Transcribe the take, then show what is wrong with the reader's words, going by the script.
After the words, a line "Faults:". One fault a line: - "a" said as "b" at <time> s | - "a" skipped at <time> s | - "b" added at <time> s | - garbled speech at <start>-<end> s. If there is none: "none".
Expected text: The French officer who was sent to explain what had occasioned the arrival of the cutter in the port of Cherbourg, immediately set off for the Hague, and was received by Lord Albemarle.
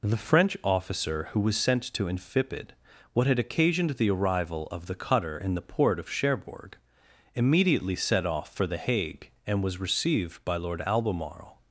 The French officer who was sent to infipid what had occasioned the arrival of the cutter in the port of Cherbourg, immediately set off for the Hague, and was received by Lord Albemarle.
Faults:
- "explain" said as "infipid" at 2.1 s